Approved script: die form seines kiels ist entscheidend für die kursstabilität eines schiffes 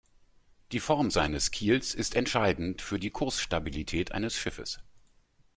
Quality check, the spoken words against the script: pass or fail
pass